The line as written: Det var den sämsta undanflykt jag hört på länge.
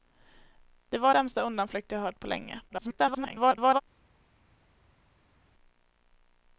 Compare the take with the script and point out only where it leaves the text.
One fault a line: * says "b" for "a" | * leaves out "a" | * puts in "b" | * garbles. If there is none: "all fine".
* leaves out "den"
* garbles